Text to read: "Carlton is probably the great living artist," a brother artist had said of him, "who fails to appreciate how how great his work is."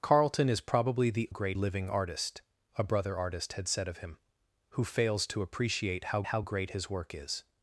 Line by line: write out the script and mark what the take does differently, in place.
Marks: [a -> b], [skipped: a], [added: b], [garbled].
"Carlton is probably the great living artist," a brother artist had said of him, "who fails to appreciate how how great his work is."